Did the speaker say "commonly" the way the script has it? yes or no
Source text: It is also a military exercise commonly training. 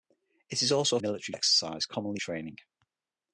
yes